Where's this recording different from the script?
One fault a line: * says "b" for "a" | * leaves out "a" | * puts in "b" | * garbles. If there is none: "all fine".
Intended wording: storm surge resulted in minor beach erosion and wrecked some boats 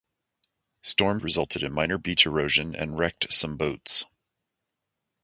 * leaves out "surge"